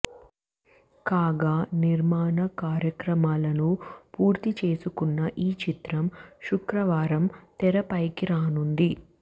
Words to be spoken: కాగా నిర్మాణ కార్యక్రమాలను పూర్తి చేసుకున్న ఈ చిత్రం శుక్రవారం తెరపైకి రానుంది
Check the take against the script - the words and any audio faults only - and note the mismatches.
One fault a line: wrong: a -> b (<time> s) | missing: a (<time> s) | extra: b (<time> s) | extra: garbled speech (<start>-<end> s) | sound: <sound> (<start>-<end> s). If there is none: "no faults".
no faults